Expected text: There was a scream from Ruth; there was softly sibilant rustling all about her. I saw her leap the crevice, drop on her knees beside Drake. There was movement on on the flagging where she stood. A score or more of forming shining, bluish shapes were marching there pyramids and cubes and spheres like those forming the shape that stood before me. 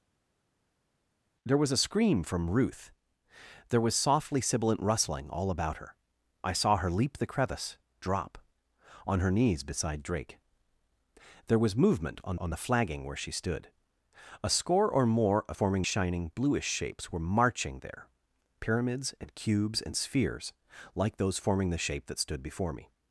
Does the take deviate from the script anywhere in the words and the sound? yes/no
no